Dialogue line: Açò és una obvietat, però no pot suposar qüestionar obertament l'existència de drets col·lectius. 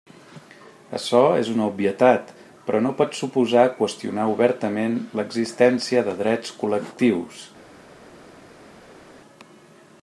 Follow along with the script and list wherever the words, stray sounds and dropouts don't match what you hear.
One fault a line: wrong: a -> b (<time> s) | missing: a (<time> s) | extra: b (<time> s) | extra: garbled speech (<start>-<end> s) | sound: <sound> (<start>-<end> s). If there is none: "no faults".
no faults